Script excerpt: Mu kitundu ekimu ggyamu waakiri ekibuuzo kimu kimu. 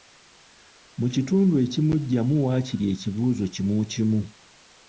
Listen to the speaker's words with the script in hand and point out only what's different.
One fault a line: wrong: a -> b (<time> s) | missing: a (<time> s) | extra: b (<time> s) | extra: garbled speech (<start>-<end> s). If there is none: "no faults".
no faults